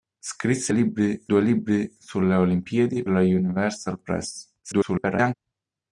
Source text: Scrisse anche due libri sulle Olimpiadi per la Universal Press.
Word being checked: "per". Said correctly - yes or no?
no